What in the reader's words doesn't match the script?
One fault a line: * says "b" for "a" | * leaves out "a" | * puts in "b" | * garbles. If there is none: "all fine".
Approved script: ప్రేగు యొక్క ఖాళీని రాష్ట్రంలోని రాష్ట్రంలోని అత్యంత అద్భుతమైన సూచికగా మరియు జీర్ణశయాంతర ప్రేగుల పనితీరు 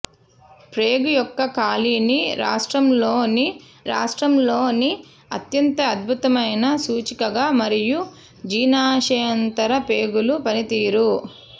all fine